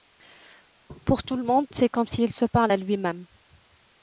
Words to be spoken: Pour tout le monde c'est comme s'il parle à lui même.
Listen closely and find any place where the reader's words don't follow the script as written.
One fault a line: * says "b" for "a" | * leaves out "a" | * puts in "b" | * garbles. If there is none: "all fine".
* puts in "se"